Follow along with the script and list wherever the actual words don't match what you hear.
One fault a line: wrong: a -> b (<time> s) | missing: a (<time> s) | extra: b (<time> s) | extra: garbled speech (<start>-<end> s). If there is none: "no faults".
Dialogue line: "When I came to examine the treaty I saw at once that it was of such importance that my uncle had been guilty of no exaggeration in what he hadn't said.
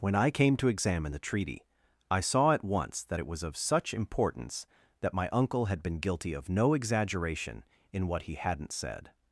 no faults